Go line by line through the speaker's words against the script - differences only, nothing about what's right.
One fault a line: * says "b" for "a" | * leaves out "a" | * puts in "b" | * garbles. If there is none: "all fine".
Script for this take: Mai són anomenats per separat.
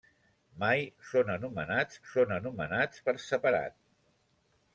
* puts in "són anomenats"